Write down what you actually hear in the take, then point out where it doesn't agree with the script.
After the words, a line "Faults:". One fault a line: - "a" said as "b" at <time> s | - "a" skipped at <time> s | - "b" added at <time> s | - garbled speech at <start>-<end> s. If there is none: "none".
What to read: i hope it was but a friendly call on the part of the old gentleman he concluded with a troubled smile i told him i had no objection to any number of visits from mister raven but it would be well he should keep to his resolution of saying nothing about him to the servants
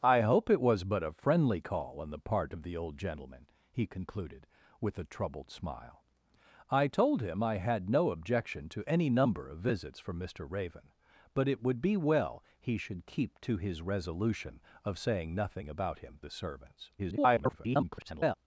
i hope it was but a friendly call on the part of the old gentleman he concluded with a troubled smile i told him i had no objection to any number of visits from mister raven but it would be well he should keep to his resolution of saying nothing about him the servants [garbled]
Faults:
- "to" skipped at 16.2 s
- garbled speech at 17.0-18.4 s